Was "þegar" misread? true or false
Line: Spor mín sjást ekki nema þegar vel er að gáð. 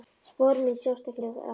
true